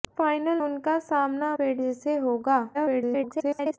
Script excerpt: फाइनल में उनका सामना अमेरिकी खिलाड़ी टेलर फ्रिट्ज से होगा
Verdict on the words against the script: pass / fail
fail